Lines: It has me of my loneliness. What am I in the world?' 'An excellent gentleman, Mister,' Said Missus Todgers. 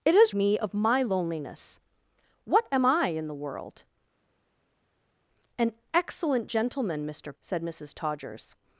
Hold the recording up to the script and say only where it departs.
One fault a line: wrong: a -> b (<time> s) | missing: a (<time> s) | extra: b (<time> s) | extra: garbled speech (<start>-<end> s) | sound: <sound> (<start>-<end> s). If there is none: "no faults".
no faults